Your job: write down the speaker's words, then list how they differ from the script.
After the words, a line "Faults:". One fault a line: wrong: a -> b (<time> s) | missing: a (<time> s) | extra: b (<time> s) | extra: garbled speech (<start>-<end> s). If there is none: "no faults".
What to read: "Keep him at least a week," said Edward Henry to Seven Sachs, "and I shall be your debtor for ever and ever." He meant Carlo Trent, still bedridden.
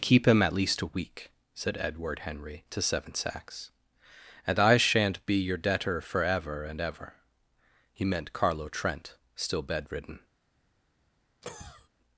"Keep him at least a week," said Edward Henry to Seven Sachs, "and I shan't be your debtor for ever and ever." He meant Carlo Trent, still bedridden.
Faults:
wrong: shall -> shan't (4.8 s)